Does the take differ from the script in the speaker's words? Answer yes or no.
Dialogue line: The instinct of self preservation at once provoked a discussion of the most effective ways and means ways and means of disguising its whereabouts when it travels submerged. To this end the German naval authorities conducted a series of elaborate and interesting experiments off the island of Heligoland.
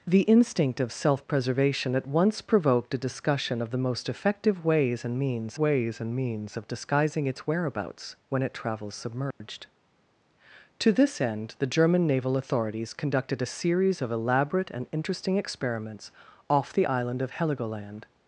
no